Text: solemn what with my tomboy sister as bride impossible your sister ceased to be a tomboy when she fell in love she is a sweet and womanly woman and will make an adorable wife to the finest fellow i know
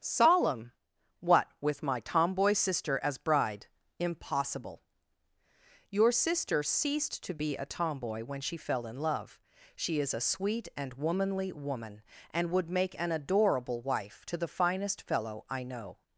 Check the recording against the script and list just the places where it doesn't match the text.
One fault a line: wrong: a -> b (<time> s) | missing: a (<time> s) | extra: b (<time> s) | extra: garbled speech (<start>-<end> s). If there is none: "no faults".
wrong: will -> would (12.5 s)